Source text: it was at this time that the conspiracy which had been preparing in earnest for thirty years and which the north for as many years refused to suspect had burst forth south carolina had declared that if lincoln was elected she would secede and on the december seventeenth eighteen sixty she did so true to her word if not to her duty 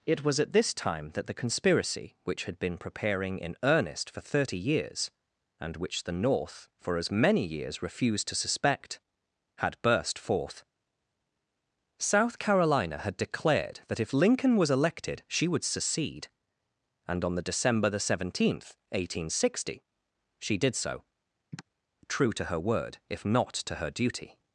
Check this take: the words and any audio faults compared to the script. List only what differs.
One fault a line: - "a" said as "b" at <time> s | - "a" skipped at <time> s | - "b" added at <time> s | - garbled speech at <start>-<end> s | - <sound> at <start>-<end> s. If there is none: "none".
- "the" added at 17.9 s
- sigh at 21.5-21.6 s